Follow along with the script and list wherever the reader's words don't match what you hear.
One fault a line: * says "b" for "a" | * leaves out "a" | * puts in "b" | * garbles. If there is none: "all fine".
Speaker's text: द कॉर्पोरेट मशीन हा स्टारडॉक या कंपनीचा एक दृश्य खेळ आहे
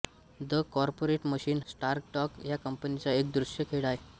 * leaves out "हा"